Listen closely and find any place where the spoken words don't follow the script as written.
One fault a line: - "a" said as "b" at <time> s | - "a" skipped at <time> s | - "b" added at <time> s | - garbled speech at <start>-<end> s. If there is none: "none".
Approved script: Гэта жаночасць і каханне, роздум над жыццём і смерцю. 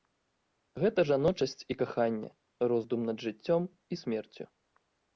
none